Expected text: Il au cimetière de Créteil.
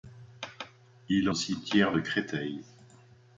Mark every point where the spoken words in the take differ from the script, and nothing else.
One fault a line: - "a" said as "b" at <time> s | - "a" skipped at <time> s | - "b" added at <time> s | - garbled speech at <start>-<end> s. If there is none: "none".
none